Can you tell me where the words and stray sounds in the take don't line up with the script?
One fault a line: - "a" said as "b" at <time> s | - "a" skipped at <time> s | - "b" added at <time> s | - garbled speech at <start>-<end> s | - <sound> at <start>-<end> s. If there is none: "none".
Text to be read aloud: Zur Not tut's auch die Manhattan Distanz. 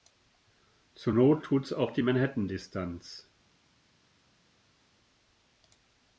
none